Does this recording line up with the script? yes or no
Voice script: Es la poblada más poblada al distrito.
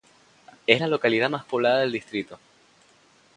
no